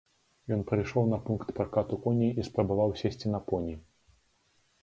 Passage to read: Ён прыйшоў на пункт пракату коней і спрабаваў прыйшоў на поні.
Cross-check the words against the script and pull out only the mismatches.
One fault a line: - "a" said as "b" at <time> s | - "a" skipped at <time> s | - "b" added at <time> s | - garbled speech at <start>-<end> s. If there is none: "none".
- "прыйшоў" said as "сесці" at 3.0 s